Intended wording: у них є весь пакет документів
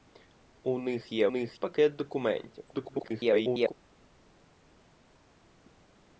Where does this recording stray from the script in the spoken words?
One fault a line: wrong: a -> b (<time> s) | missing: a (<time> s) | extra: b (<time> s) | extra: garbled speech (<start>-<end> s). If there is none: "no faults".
wrong: весь -> них (1.3 s)
extra: garbled speech (2.7-3.7 s)